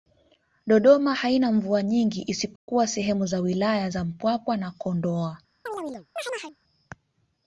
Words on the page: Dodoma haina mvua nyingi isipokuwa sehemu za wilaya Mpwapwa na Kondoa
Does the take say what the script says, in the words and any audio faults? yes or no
no